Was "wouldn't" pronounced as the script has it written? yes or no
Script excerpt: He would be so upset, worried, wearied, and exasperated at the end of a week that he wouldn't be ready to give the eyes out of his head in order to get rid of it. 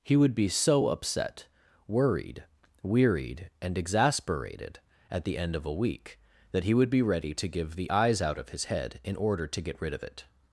no